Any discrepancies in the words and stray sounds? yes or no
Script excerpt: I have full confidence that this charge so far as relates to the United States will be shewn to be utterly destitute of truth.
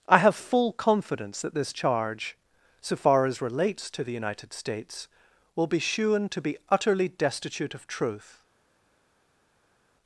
no